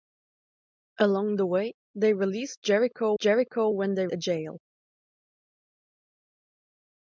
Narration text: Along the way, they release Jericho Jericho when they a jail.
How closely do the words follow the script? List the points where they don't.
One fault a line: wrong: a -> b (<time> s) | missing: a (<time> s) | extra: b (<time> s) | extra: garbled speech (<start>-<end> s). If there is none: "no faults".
no faults